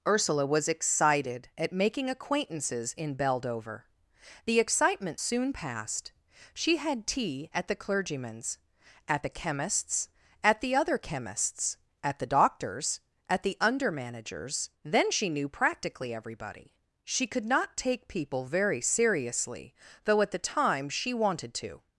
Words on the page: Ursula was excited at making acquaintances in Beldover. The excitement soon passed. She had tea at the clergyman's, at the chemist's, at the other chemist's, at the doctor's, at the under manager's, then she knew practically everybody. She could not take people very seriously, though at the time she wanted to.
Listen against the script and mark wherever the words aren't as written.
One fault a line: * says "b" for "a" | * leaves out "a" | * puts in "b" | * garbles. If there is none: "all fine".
all fine